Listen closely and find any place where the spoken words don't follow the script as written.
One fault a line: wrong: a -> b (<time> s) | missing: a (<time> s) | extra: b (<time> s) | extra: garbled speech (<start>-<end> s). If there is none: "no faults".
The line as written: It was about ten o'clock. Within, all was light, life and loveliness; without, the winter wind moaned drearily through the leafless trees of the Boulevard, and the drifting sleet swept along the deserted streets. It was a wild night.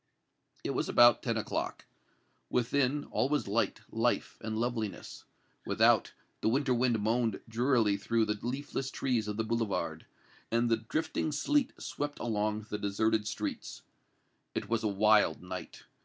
no faults